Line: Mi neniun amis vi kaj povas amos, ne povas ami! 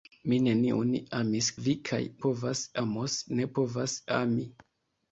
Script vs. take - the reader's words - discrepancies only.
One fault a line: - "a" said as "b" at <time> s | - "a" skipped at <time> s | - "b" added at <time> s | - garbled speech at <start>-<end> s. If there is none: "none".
none